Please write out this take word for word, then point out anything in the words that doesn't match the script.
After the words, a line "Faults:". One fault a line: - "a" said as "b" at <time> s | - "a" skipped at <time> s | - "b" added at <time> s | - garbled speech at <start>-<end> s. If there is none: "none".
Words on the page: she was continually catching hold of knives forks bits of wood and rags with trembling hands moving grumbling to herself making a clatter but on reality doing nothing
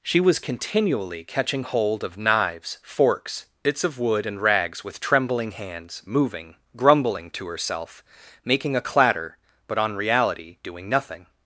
she was continually catching hold of knives forks bits of wood and rags with trembling hands moving grumbling to herself making a clatter but on reality doing nothing
Faults:
none